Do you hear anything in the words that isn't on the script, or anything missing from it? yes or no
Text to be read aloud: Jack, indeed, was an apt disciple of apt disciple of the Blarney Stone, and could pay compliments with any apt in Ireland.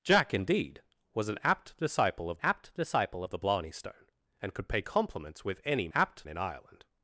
no